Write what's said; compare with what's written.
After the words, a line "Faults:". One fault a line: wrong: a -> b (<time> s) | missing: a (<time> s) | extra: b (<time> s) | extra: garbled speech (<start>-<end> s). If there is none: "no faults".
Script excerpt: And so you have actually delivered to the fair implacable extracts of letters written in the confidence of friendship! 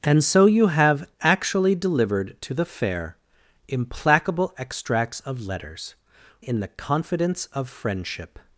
And so you have actually delivered to the fair implacable extracts of letters in the confidence of friendship!
Faults:
missing: written (6.0 s)